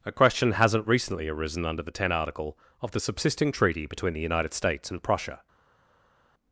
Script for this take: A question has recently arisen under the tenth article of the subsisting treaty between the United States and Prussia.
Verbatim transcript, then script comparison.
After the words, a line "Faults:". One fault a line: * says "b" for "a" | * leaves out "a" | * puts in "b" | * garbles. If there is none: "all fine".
A question hasn't recently arisen under the ten article of the subsisting treaty between the United States and Prussia.
Faults:
* says "hasn't" for "has"
* says "ten" for "tenth"